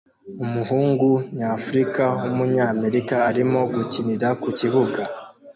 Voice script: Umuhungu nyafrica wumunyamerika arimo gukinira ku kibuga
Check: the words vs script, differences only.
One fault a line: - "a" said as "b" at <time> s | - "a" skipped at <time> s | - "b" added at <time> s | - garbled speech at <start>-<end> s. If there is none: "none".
none